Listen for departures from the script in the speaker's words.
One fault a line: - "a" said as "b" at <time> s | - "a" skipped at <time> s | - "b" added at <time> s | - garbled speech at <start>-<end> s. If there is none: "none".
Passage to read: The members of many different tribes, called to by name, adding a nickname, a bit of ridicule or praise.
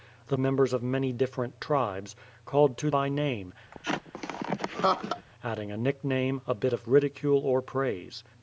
none